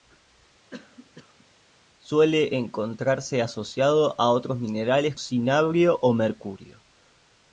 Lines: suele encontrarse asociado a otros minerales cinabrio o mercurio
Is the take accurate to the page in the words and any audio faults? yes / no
no